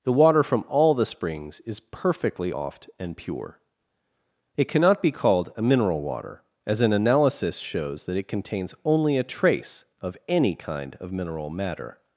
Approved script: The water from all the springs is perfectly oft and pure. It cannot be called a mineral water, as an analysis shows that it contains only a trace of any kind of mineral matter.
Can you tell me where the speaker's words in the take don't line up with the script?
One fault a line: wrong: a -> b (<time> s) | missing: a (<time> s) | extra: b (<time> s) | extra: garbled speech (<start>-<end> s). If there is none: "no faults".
no faults